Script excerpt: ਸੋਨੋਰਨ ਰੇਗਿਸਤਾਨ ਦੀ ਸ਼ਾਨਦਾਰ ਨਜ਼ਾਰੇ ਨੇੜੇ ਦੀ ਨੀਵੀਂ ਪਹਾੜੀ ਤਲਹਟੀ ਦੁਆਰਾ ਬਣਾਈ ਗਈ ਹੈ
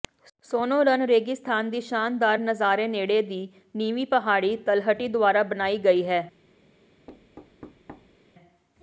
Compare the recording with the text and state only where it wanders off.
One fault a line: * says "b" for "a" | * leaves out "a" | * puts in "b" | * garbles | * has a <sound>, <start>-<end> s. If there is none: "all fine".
* has a thud, 7.1-8.2 s